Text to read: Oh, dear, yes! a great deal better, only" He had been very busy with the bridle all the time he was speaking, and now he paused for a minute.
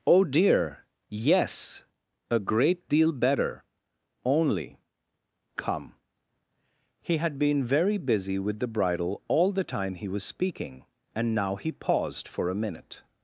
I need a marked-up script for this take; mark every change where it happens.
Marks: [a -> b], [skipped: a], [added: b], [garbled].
Oh, dear, yes! a great deal better, only" [added: come] He had been very busy with the bridle all the time he was speaking, and now he paused for a minute.